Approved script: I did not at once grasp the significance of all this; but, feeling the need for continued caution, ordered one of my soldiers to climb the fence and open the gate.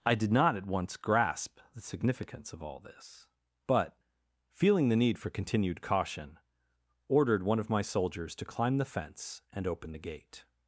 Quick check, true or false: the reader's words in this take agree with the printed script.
true